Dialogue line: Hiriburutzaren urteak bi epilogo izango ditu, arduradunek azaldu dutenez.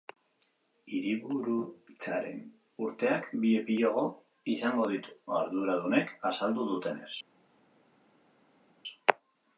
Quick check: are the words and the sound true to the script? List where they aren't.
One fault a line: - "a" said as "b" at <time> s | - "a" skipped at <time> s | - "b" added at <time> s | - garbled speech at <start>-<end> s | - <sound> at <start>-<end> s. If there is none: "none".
none